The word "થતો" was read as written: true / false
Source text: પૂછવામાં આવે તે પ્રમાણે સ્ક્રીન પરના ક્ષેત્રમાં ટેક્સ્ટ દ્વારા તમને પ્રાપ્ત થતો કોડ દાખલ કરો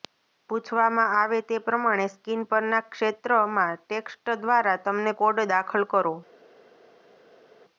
false